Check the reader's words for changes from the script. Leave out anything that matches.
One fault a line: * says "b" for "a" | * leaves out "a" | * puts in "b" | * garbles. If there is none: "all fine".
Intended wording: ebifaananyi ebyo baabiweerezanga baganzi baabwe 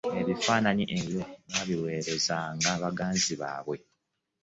all fine